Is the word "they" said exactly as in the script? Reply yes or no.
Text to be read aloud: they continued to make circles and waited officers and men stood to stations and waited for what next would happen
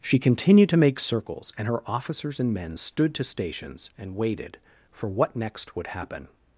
no